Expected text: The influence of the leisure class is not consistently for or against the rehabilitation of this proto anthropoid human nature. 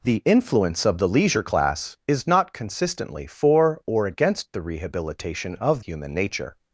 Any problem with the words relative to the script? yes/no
yes